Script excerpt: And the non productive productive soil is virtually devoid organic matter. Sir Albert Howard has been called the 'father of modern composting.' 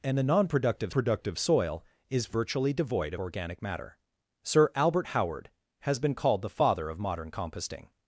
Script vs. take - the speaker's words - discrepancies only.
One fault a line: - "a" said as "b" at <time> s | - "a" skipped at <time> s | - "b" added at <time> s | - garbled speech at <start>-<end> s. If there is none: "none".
none